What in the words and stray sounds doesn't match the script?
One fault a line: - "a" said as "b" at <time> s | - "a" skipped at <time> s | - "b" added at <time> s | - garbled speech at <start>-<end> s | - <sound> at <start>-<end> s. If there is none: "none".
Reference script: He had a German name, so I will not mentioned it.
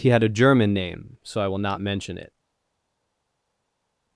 - "mentioned" said as "mention" at 1.8 s